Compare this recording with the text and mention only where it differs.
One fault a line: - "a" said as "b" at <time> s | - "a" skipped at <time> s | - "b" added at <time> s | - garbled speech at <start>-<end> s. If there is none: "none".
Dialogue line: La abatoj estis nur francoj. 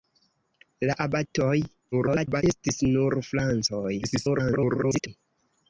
- garbled speech at 1.9-2.4 s
- garbled speech at 4.0-5.1 s